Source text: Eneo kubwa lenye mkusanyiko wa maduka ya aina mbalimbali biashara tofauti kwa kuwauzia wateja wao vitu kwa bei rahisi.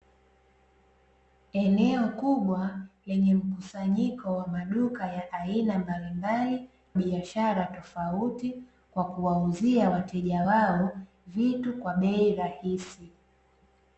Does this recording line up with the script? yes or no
yes